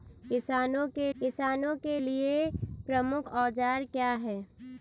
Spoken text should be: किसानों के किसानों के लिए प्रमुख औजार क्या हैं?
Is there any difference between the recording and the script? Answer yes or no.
no